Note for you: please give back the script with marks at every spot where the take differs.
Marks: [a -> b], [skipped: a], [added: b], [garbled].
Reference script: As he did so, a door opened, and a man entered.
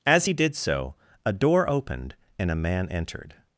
As he did so, a door opened, and a man entered.